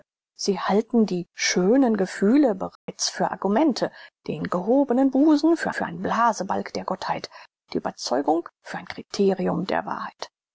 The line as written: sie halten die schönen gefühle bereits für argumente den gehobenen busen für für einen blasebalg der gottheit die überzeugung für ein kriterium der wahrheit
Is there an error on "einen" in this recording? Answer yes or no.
no